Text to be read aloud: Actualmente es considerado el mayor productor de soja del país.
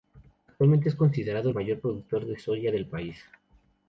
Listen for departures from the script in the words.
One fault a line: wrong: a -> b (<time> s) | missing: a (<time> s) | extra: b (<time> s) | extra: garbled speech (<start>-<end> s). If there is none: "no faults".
no faults